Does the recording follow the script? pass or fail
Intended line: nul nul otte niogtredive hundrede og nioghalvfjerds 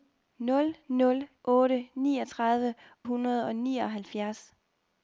pass